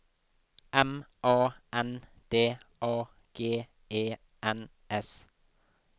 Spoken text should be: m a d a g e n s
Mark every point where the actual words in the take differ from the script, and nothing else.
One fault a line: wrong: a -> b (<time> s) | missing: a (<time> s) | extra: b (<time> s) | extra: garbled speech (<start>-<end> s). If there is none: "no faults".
extra: n (1.7 s)